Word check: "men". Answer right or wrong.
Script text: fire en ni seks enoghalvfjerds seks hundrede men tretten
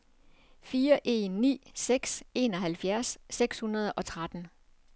wrong